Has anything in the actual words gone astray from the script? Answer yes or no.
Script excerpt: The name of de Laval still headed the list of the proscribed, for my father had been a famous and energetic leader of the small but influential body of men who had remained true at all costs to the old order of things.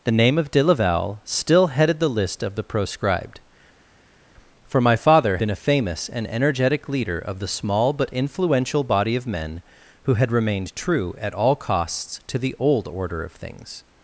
yes